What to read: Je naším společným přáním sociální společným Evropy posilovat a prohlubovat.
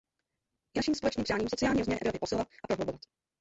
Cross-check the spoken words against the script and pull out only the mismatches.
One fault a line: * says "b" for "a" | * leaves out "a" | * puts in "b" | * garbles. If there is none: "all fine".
* says "rozměr" for "společným"